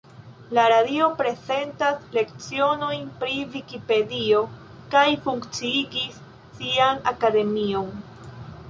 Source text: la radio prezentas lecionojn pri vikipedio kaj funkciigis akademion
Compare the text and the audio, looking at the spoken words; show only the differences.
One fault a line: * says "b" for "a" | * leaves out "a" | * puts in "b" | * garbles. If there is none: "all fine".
* puts in "sian"